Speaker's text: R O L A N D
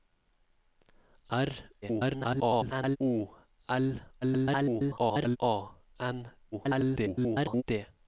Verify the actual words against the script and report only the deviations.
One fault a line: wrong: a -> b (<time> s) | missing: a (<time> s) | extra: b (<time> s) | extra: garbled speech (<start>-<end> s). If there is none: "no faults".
extra: garbled speech (1.8-3.0 s)
extra: garbled speech (4.2-5.4 s)
extra: garbled speech (6.5-7.6 s)